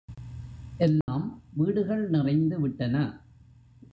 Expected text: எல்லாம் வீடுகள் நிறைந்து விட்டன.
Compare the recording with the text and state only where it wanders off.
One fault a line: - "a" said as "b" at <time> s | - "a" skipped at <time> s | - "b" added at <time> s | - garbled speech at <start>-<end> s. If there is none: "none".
none